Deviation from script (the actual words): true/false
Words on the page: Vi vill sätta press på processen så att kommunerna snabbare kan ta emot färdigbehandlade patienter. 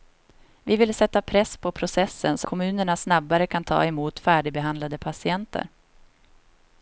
true